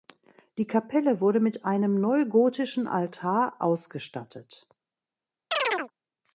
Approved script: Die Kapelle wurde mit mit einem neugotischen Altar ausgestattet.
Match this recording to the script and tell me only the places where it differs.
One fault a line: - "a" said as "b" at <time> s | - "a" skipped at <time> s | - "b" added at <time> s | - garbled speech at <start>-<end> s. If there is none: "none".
- "mit" skipped at 1.7 s